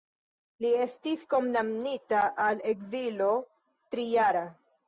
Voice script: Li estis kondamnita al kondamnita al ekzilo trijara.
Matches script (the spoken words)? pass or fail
fail